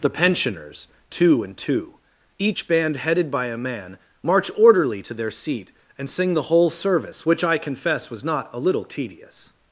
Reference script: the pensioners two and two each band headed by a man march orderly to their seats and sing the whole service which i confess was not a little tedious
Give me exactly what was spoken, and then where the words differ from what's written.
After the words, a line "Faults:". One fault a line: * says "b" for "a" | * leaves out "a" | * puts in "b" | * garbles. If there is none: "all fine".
the pensioners two and two each band headed by a man march orderly to their seat and sing the whole service which i confess was not a little tedious
Faults:
* says "seat" for "seats"